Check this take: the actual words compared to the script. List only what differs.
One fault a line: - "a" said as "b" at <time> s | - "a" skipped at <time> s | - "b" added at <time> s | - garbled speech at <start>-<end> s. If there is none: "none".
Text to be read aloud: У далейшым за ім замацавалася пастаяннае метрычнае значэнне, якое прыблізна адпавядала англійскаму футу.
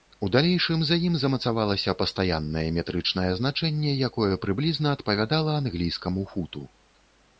none